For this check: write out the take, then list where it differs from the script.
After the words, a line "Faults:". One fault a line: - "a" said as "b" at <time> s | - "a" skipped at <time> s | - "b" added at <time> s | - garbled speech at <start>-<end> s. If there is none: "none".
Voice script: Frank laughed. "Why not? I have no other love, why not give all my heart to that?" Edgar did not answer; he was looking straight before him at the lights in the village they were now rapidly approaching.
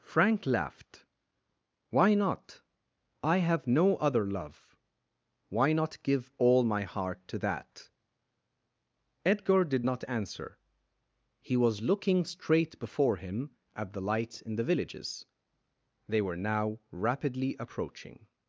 Frank laughed. "Why not? I have no other love, why not give all my heart to that?" Edgar did not answer; he was looking straight before him at the lights in the villages they were now rapidly approaching.
Faults:
- "village" said as "villages" at 14.6 s